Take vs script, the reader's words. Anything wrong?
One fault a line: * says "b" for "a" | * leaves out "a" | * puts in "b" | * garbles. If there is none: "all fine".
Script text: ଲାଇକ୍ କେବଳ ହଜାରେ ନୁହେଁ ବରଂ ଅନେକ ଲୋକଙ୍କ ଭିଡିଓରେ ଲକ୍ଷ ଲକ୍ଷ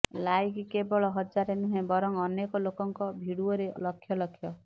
all fine